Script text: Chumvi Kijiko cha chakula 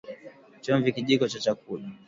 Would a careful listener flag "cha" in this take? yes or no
no